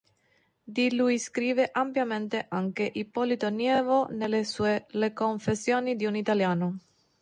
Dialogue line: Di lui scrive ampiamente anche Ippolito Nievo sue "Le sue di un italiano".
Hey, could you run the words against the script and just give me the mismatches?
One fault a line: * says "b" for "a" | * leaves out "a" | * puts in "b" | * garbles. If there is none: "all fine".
* puts in "nelle"
* says "confessioni" for "sue"